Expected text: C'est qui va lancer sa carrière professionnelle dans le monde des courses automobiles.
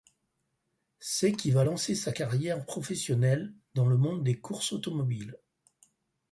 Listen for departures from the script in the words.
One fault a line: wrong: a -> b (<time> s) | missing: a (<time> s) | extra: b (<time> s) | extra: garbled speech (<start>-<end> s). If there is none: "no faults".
no faults